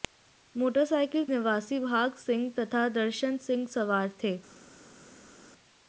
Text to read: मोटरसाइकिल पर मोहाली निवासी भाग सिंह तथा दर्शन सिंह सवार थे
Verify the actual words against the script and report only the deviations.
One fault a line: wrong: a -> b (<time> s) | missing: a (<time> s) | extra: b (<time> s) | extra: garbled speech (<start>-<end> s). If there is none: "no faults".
missing: पर मोहाली (1.2 s)